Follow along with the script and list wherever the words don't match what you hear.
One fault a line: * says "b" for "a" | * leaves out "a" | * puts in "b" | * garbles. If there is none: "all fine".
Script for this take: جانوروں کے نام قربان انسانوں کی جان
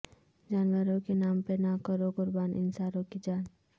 * puts in "پہ نہ کرو"